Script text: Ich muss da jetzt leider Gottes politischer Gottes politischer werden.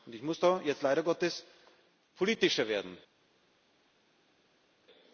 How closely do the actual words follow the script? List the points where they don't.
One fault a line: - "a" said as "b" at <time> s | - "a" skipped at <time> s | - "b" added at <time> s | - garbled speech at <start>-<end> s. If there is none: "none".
- "Gottes politischer" skipped at 2.7 s